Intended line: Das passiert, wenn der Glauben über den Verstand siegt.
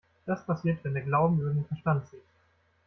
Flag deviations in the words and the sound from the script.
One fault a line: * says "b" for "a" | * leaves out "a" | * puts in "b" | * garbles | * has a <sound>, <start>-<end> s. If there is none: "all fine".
all fine